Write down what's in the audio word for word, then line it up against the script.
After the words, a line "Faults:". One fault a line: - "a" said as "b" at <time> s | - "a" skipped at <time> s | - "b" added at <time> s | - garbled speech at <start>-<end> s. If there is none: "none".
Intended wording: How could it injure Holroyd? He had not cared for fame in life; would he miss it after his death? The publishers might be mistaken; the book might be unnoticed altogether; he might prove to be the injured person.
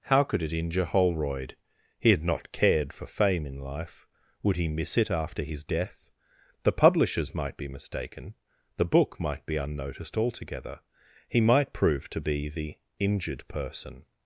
How could it injure Holroyd? He had not cared for fame in life; would he miss it after his death? The publishers might be mistaken; the book might be unnoticed altogether; he might prove to be the injured person.
Faults:
none